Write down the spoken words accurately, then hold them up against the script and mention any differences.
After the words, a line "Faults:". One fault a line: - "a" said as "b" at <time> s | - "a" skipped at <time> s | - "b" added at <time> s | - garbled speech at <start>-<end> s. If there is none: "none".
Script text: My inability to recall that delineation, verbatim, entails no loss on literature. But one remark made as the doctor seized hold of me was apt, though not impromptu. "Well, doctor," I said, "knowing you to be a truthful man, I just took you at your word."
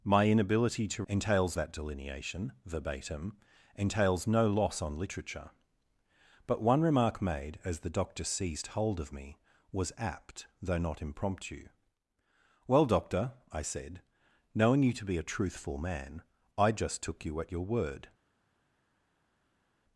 My inability to entails that delineation, verbatim, entails no loss on literature. But one remark made as the doctor seized hold of me was apt, though not impromptu. "Well, doctor," I said, "knowing you to be a truthful man, I just took you at your word."
Faults:
- "recall" said as "entails" at 1.1 s